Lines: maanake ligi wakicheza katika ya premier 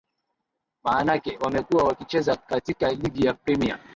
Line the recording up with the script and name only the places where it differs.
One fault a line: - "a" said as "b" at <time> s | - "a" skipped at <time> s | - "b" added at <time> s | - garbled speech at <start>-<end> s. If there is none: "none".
- "ligi" said as "wamekuwa" at 1.4 s
- "ligi" added at 2.9 s